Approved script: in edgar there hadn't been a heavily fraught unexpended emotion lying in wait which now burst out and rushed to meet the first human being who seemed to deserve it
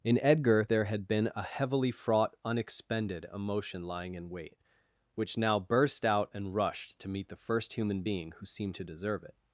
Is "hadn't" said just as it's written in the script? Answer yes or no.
no